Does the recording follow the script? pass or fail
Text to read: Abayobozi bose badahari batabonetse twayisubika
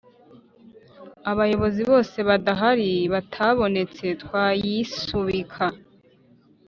pass